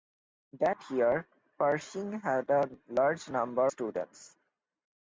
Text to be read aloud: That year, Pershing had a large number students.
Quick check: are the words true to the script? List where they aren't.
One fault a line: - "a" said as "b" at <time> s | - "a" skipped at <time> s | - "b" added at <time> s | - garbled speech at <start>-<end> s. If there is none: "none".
none